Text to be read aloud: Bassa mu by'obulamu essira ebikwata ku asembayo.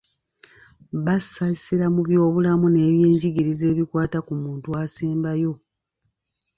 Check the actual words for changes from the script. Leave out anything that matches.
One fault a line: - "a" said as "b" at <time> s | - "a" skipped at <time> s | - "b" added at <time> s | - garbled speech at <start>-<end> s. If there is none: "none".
- "essira" added at 1.6 s
- "essira" said as "n'ebyenjigiriza" at 2.7 s
- "muntu" added at 4.4 s